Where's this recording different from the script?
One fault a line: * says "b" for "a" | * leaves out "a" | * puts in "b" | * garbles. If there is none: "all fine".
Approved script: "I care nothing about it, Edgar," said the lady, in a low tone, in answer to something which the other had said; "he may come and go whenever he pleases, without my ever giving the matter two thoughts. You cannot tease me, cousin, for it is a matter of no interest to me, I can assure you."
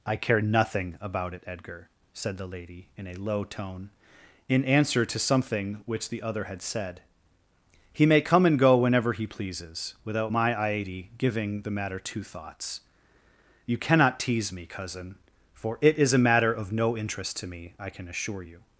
* says "iady" for "ever"